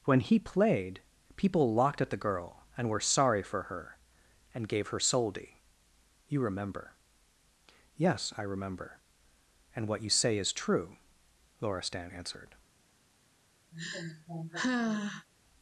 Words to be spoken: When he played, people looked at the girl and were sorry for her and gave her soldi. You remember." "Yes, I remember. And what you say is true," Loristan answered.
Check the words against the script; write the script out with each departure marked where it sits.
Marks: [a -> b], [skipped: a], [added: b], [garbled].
When he played, people [looked -> locked] at the girl and were sorry for her and gave her soldi. You remember." "Yes, I remember. And what you say is true," Loristan answered.